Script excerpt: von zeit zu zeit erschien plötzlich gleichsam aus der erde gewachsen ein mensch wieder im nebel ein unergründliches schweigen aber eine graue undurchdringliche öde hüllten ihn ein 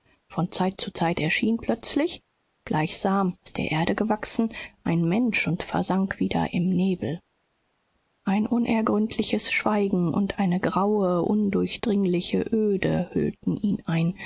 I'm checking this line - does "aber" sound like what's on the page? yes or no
no